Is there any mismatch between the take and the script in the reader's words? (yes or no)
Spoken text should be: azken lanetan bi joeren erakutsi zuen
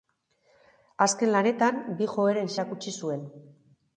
no